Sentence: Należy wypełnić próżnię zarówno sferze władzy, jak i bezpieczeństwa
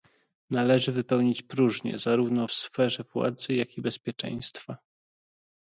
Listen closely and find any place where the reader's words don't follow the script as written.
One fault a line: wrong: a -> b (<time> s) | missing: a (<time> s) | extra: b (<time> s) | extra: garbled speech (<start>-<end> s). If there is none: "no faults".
no faults